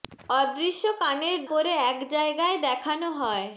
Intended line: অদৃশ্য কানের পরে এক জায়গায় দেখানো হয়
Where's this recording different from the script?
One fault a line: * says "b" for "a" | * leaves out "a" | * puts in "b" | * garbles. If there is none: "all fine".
all fine